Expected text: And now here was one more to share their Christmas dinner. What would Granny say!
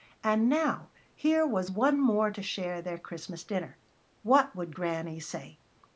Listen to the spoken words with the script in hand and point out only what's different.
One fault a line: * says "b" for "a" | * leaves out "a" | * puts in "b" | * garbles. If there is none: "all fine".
all fine